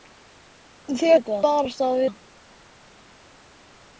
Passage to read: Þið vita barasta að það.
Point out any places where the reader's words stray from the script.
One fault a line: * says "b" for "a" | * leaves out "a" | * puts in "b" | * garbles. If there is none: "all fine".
all fine